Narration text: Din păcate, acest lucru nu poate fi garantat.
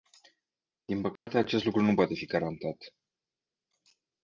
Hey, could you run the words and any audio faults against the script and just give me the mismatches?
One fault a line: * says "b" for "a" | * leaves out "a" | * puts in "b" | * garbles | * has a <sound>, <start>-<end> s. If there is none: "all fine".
* has a dropout, 1.2-1.3 s